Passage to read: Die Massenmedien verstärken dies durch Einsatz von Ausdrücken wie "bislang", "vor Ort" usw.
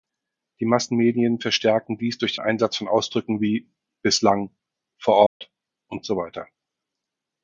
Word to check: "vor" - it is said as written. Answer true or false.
true